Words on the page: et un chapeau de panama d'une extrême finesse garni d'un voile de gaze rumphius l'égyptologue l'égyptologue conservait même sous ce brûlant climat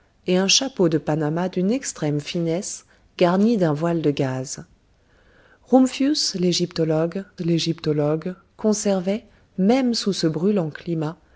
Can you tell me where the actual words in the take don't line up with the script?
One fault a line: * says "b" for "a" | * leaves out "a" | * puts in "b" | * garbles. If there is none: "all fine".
all fine